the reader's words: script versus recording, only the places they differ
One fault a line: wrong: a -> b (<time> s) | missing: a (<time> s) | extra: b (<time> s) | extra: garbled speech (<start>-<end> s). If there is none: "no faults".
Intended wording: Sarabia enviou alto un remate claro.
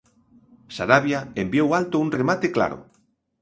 no faults